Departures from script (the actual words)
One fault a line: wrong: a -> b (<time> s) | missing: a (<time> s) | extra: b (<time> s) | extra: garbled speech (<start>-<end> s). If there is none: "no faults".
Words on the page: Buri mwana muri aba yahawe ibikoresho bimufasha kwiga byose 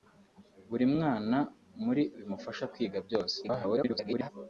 missing: aba yahawe ibikoresho (2.0 s)
extra: garbled speech (3.4-4.3 s)